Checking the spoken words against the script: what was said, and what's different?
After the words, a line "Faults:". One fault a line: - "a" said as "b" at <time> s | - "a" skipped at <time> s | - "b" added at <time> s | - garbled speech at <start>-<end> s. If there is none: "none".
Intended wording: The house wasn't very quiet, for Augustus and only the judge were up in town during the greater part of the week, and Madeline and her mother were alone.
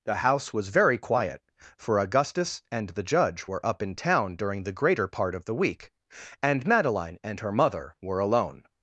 The house was very quiet, for Augustus and the judge were up in town during the greater part of the week, and Madeline and her mother were alone.
Faults:
- "wasn't" said as "was" at 0.5 s
- "only" skipped at 2.9 s